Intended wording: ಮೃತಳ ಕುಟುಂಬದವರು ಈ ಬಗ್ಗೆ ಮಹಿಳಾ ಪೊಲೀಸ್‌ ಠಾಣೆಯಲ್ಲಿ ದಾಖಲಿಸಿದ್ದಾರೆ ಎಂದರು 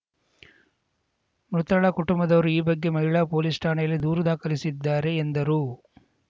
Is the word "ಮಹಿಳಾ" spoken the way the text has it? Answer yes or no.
yes